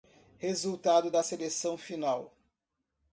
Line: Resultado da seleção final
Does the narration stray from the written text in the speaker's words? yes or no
no